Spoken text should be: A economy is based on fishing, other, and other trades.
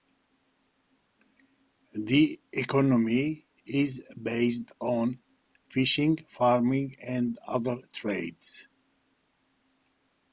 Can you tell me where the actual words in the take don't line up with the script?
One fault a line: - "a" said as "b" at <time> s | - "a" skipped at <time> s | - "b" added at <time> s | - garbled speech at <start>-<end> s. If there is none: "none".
- "A" said as "The" at 1.9 s
- "other" said as "farming" at 6.3 s